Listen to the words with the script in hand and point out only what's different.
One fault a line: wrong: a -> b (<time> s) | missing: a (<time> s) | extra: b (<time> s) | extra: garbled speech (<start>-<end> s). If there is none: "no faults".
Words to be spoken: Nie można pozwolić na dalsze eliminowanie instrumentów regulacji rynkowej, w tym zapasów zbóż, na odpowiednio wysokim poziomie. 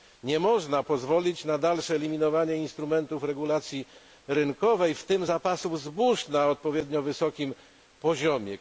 no faults